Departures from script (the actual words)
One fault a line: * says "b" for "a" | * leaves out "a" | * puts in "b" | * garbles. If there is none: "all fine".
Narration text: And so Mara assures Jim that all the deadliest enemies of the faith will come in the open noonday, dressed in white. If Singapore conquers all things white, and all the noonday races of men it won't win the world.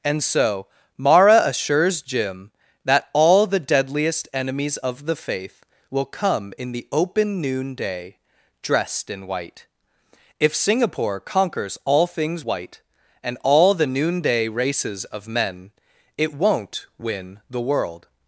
all fine